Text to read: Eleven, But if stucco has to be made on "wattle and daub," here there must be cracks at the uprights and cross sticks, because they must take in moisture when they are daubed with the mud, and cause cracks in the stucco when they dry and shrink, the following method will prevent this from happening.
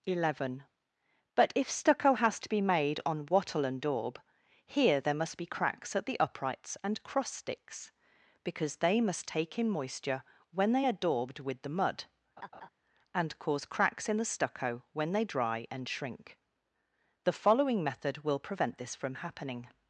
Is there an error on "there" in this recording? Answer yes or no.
no